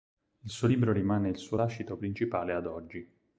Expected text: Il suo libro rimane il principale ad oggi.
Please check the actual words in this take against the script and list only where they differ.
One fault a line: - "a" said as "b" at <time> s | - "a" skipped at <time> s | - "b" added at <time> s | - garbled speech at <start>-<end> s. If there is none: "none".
- "suo lascito" added at 1.4 s